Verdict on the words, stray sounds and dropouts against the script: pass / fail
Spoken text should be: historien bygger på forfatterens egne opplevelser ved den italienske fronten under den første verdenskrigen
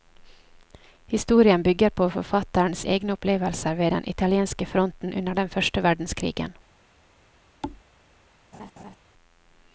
fail